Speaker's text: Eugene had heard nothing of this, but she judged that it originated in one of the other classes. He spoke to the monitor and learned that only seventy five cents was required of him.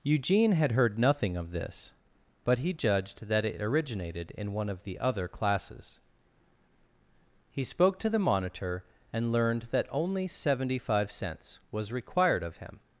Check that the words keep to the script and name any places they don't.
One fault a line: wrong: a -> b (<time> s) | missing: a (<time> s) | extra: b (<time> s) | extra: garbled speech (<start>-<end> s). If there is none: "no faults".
wrong: she -> he (2.6 s)